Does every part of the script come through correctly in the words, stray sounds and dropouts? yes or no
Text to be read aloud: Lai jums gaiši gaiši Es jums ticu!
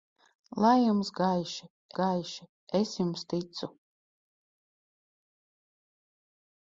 yes